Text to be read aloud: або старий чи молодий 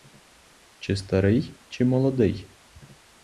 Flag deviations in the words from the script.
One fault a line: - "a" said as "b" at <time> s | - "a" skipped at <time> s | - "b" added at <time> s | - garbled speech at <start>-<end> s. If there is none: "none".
- "або" said as "чи" at 0.8 s